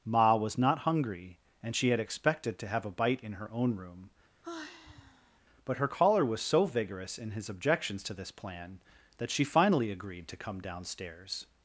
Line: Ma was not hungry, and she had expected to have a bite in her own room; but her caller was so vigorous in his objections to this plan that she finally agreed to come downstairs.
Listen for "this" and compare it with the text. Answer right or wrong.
right